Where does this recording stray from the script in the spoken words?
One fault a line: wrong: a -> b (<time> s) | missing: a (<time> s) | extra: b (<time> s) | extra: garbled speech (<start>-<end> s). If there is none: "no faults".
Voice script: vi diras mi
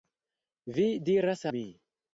no faults